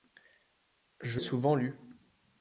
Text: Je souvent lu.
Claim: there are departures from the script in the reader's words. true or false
false